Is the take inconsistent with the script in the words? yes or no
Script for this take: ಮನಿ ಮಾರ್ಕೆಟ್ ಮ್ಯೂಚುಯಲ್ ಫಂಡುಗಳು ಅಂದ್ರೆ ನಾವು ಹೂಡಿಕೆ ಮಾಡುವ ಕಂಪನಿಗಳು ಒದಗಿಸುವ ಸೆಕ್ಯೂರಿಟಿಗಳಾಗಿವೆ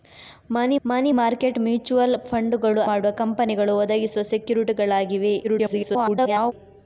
yes